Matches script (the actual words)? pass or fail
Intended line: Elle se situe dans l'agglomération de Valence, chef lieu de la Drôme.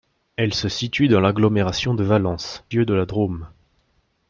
fail